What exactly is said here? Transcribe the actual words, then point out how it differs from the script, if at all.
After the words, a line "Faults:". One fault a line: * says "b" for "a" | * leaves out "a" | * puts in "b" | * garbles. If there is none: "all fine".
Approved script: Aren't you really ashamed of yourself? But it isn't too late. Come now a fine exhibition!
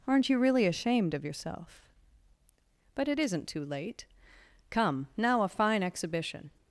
Aren't you really ashamed of yourself? But it isn't too late. Come now a fine exhibition!
Faults:
all fine